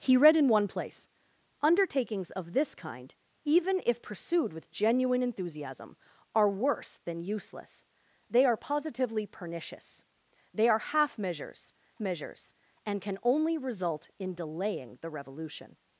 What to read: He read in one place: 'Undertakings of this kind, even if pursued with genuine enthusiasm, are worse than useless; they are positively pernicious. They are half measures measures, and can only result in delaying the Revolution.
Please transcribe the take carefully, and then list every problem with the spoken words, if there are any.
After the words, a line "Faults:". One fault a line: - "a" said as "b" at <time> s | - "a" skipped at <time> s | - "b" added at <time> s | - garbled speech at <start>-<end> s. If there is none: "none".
He read in one place: 'Undertakings of this kind, even if pursued with genuine enthusiasm, are worse than useless; they are positively pernicious. They are half measures measures, and can only result in delaying the Revolution.
Faults:
none